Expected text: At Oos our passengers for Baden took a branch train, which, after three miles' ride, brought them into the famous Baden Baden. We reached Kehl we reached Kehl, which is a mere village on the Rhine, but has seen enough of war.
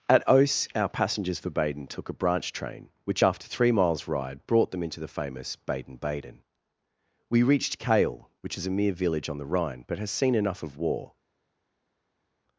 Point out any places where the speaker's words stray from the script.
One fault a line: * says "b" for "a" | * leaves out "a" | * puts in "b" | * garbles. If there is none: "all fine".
* leaves out "we reached Kehl"